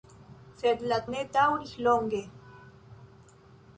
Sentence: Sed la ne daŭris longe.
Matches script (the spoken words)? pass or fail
pass